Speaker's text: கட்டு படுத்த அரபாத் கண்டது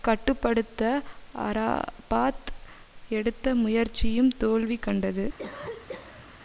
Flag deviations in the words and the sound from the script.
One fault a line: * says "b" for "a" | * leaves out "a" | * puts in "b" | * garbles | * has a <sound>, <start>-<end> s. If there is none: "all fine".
* puts in "எடுத்த முயற்சியும் தோல்வி"
* has a cough, 5.4-6.2 s